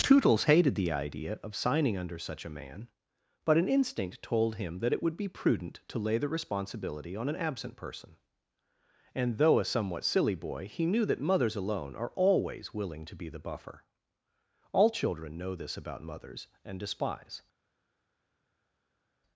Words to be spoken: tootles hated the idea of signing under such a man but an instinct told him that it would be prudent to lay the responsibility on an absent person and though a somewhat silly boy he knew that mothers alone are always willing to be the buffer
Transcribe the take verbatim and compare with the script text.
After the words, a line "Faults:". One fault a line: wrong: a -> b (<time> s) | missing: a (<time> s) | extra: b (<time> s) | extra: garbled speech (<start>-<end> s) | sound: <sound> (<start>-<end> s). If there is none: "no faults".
tootles hated the idea of signing under such a man but an instinct told him that it would be prudent to lay the responsibility on an absent person and though a somewhat silly boy he knew that mothers alone are always willing to be the buffer all children know this about mothers and despise
Faults:
extra: all children know this about mothers and despise (14.7 s)